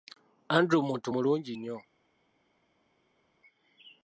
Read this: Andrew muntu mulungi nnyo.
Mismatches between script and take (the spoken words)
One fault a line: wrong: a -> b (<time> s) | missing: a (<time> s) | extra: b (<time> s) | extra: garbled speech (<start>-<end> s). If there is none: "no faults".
no faults